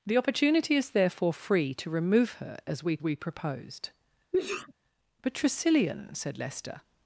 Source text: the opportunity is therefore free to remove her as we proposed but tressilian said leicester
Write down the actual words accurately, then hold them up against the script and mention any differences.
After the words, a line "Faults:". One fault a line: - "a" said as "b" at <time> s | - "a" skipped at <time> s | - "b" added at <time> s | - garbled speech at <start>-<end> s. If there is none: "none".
the opportunity is therefore free to remove her as we we proposed but tressilian said leicester
Faults:
- "we" added at 3.0 s